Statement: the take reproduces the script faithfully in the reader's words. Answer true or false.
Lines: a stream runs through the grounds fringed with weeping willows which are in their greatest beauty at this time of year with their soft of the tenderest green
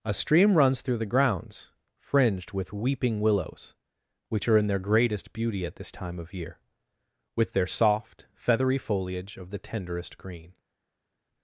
false